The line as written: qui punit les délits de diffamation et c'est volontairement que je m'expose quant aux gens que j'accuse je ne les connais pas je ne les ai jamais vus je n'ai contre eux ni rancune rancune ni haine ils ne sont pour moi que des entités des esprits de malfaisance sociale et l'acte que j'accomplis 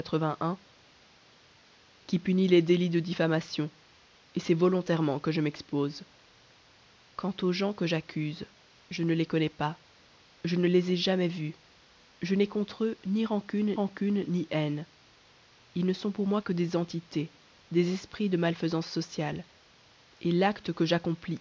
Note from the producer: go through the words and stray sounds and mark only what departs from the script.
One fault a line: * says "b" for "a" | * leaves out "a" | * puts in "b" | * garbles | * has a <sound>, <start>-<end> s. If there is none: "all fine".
all fine